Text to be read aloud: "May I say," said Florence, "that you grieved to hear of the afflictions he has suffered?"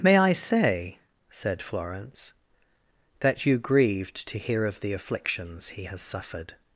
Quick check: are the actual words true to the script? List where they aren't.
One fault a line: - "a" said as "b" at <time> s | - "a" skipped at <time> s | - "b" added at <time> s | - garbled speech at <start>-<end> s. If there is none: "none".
none